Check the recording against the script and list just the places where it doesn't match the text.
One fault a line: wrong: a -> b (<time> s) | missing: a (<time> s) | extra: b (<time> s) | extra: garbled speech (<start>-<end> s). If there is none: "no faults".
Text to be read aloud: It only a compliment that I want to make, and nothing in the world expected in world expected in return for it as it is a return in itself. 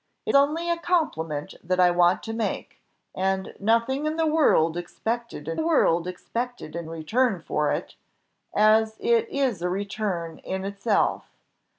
no faults